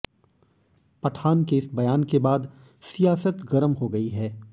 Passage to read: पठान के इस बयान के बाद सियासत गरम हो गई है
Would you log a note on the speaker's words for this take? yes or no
no